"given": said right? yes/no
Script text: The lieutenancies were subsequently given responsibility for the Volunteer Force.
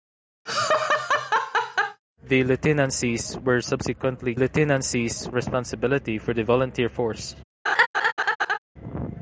no